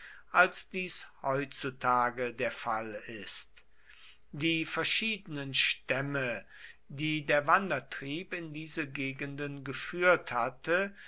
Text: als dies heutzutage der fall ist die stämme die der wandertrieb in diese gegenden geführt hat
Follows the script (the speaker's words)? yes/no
no